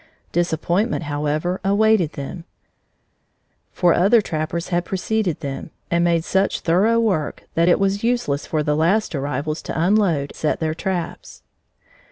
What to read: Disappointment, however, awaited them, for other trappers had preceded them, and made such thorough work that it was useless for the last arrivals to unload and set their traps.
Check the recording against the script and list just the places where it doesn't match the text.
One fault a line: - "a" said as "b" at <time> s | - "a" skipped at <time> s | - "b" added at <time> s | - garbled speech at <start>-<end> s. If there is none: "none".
- "and" skipped at 10.3 s